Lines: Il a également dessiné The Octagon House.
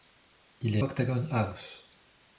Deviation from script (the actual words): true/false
true